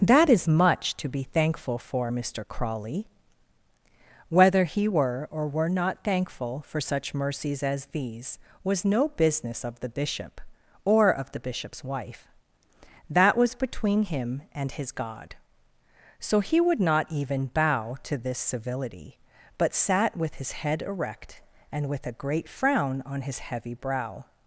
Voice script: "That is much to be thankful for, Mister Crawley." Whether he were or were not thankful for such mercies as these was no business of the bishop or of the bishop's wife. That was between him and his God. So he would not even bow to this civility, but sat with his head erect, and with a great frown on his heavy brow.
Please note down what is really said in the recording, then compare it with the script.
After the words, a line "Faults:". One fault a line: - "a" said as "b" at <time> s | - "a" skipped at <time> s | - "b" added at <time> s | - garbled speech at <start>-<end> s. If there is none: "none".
"That is much to be thankful for, Mister Crawley." Whether he were or were not thankful for such mercies as these was no business of the bishop or of the bishop's wife. That was between him and his God. So he would not even bow to this civility, but sat with his head erect, and with a great frown on his heavy brow.
Faults:
none